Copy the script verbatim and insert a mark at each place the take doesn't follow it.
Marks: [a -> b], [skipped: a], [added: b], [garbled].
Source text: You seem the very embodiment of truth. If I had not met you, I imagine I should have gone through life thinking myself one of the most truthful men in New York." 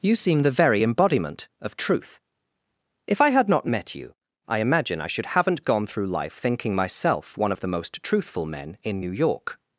You seem the very embodiment of truth. If I had not met you, I imagine I should [have -> haven't] gone through life thinking myself one of the most truthful men in New York."